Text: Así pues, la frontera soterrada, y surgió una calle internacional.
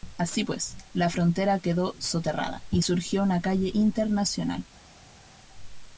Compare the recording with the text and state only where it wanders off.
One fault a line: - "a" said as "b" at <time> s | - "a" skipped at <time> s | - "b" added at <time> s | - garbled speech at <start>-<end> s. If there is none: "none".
- "quedó" added at 1.6 s